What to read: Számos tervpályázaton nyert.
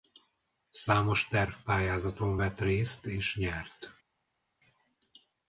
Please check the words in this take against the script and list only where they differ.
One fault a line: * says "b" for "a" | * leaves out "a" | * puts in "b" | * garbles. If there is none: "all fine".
* puts in "vett részt és"